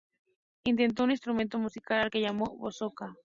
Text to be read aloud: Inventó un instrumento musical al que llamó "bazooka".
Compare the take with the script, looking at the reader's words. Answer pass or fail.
pass